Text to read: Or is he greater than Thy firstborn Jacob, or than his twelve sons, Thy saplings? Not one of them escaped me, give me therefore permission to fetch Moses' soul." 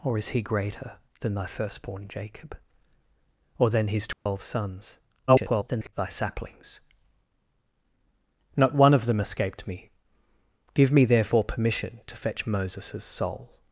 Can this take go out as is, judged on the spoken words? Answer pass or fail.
fail